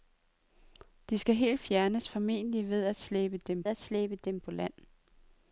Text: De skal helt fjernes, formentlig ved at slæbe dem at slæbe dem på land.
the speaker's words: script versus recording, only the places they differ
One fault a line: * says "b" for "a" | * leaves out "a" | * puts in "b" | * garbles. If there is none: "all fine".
all fine